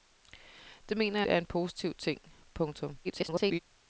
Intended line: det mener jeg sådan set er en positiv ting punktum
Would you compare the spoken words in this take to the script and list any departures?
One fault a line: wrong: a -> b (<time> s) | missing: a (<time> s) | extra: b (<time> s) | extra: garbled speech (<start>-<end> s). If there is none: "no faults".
missing: jeg sådan set (1.2 s)
extra: garbled speech (3.0-3.6 s)